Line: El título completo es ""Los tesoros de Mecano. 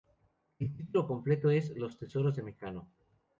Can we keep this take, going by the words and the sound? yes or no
yes